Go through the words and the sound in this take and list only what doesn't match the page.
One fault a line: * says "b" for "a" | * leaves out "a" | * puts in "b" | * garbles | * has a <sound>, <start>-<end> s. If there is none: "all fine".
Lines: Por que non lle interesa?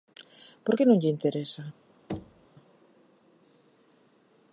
* has a thud, 2.1-2.5 s